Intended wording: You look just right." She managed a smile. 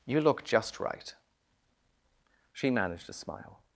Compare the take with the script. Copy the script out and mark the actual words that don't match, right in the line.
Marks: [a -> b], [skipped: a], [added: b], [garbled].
You look just right." She managed a smile.